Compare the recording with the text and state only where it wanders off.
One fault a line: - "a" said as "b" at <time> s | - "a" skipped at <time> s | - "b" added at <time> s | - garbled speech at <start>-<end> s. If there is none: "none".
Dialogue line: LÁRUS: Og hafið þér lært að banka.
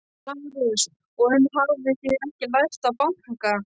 - "enn" added at 1.4 s
- "ekki" added at 2.3 s